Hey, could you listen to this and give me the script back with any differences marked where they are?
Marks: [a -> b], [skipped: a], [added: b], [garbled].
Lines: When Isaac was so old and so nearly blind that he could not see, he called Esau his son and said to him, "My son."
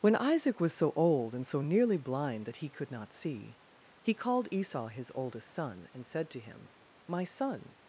When Isaac was so old and so nearly blind that he could not see, he called Esau his [added: oldest] son and said to him, "My son."